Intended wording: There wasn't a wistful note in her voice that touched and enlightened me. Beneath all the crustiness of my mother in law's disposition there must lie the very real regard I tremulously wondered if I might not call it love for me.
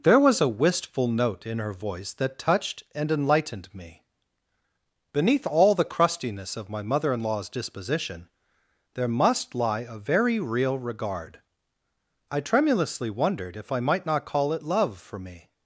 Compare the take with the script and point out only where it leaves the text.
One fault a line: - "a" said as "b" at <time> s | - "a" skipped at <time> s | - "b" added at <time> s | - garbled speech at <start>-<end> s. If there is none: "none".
- "wasn't" said as "was" at 0.2 s
- "the" said as "a" at 9.8 s